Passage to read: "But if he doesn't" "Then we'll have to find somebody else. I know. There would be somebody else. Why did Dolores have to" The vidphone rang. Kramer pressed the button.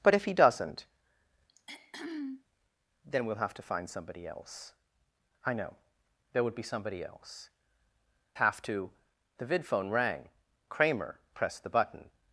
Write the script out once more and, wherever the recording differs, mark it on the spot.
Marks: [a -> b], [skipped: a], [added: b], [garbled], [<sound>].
"But if he doesn't" [throat clearing] "Then we'll have to find somebody else. I know. There would be somebody else. [skipped: Why did Dolores] have to" The vidphone rang. Kramer pressed the button.